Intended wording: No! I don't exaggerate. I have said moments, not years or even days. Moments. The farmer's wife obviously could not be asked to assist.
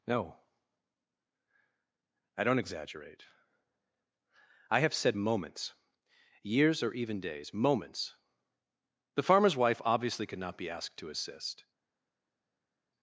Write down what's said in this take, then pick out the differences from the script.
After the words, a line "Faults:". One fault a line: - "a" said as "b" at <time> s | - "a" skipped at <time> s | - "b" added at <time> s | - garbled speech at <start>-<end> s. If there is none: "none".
No! I don't exaggerate. I have said moments, years or even days. Moments. The farmer's wife obviously could not be asked to assist.
Faults:
- "not" skipped at 5.7 s